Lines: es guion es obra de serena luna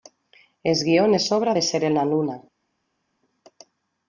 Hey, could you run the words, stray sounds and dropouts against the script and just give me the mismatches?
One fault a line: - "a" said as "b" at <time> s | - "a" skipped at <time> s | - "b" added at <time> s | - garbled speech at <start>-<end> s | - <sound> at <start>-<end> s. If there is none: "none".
none